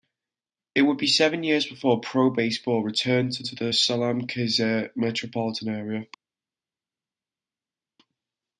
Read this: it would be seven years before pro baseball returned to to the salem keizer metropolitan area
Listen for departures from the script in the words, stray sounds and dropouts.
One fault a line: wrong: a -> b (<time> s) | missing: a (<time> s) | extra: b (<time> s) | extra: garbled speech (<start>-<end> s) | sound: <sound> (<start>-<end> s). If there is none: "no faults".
no faults